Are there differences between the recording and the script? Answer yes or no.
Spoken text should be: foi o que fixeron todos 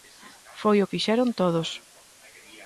yes